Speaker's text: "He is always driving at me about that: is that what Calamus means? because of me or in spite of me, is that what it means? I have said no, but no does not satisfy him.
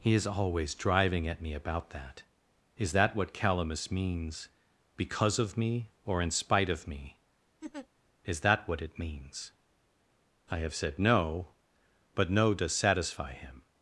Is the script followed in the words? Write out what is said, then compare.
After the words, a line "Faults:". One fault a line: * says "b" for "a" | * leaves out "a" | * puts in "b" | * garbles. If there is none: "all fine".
"He is always driving at me about that: is that what Calamus means? because of me or in spite of me, is that what it means? I have said no, but no does satisfy him.
Faults:
* leaves out "not"